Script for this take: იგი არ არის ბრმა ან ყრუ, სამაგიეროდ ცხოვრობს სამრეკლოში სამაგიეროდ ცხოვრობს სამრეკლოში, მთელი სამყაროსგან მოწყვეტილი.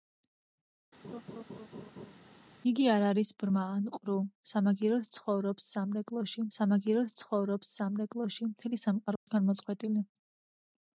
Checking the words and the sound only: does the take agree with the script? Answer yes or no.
no